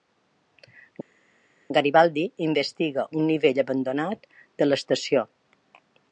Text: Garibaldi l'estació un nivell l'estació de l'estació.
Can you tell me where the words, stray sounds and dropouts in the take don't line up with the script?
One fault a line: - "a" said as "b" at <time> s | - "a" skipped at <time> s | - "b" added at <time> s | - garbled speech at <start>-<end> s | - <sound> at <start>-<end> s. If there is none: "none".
- "l'estació" said as "investiga" at 2.5 s
- "l'estació" said as "abandonat" at 3.6 s